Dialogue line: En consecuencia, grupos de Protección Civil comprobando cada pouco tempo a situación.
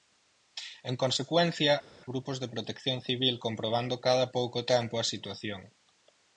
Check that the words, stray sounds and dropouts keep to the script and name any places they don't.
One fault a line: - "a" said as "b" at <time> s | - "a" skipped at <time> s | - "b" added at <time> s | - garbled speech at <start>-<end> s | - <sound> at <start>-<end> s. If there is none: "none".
none